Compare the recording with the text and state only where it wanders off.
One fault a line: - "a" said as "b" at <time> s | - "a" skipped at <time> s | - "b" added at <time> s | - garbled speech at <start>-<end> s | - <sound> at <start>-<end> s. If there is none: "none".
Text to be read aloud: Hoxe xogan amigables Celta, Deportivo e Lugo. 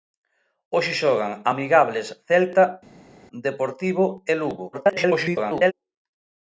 - garbled speech at 4.7-5.7 s